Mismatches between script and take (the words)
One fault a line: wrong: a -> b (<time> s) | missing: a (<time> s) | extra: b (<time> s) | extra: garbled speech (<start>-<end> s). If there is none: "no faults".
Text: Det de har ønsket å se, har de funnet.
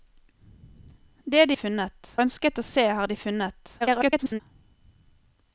wrong: har -> funnet (1.6 s)
extra: garbled speech (3.8-4.4 s)